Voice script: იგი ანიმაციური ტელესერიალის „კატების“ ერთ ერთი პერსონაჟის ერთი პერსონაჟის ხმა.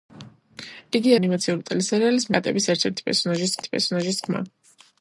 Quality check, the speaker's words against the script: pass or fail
pass